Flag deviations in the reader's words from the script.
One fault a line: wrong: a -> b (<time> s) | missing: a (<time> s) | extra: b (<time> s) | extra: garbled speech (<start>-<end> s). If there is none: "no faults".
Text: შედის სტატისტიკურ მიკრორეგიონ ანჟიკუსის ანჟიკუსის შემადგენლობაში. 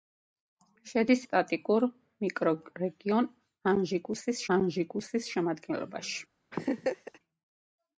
no faults